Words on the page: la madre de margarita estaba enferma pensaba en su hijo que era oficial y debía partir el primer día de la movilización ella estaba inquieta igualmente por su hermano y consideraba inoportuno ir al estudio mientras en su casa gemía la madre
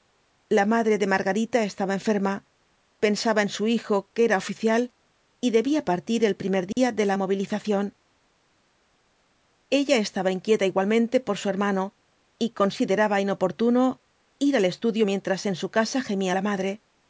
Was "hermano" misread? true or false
false